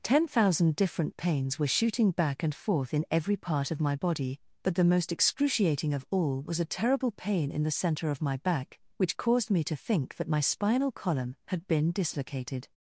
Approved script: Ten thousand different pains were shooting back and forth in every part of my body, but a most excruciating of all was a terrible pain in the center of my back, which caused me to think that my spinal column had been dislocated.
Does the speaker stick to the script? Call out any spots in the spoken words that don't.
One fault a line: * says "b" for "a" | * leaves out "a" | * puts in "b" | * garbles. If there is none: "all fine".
* says "the" for "a"